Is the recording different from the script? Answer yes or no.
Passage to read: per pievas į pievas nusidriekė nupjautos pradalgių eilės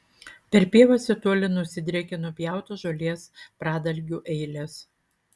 yes